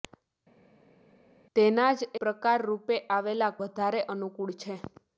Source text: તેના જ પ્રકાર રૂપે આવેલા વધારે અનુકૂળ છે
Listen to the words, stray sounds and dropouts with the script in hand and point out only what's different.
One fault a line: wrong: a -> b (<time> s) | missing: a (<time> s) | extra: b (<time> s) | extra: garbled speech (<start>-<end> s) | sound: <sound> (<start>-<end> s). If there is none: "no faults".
no faults